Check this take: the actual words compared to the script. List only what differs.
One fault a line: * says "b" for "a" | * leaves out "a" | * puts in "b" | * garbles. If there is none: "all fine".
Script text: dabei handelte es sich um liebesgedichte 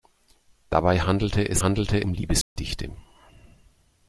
* says "handelte" for "sich"